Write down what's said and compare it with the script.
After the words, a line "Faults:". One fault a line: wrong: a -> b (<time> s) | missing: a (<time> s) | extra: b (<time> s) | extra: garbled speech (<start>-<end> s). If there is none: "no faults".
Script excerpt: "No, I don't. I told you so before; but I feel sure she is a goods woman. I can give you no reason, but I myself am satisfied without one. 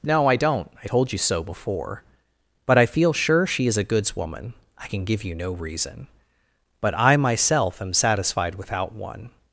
"No, I don't. I told you so before; but I feel sure she is a goods woman. I can give you no reason, but I myself am satisfied without one.
Faults:
no faults